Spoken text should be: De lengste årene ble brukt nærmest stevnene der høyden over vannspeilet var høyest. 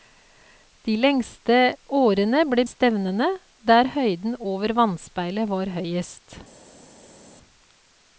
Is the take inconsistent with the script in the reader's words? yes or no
yes